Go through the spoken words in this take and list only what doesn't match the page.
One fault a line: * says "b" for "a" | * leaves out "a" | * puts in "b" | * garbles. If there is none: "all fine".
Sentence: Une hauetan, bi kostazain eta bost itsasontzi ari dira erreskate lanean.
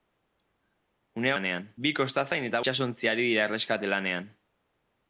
* says "lanean" for "hauetan"
* leaves out "bost"